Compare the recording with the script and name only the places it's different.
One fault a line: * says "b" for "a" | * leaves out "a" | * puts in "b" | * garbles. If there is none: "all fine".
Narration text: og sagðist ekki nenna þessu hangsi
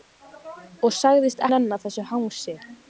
* leaves out "ekki"